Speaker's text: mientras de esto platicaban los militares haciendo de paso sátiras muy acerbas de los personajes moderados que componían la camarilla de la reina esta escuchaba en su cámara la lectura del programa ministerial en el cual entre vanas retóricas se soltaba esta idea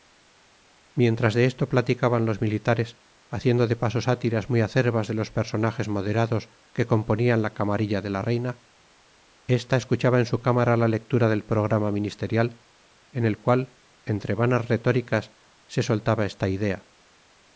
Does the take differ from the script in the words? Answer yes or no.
no